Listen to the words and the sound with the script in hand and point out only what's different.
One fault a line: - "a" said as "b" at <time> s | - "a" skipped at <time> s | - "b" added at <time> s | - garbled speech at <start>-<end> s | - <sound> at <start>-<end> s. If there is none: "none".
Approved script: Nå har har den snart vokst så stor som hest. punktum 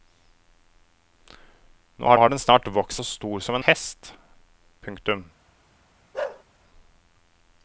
- bark at 6.1-6.4 s